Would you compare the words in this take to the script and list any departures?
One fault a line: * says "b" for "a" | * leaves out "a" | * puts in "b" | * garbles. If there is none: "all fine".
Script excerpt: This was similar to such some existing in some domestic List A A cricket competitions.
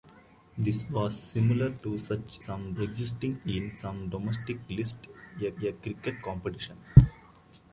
all fine